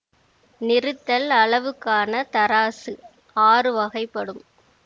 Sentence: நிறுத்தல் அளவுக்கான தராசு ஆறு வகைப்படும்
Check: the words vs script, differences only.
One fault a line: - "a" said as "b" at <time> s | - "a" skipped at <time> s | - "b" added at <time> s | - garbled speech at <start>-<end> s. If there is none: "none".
none